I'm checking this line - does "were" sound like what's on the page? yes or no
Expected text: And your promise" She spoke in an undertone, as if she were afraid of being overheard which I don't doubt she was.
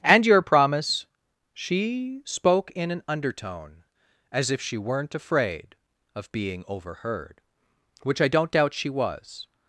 no